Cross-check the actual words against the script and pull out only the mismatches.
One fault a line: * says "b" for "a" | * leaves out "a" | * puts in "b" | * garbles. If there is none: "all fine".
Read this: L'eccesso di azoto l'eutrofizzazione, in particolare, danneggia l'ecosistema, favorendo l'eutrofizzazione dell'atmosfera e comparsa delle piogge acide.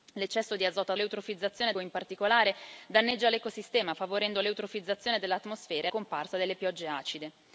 all fine